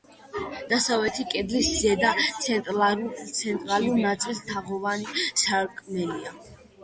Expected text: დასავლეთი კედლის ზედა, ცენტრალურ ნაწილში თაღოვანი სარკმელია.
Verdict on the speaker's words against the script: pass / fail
pass